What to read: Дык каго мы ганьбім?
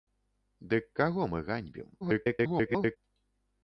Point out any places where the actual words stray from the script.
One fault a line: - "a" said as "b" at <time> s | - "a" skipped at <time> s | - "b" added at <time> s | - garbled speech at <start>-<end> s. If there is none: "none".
- garbled speech at 2.0-3.0 s